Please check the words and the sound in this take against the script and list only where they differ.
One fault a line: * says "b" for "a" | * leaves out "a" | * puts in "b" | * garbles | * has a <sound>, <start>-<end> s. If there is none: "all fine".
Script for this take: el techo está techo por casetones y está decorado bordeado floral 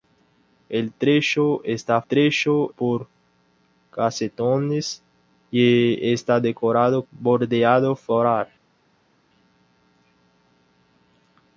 all fine